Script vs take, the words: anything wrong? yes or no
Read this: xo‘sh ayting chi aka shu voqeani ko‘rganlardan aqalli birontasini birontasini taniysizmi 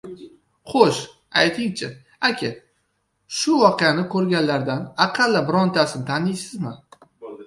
yes